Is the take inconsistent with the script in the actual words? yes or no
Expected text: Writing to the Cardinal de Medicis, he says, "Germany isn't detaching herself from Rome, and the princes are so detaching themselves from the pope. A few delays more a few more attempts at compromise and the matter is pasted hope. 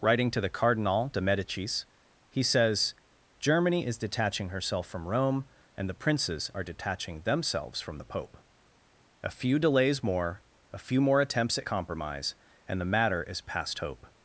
yes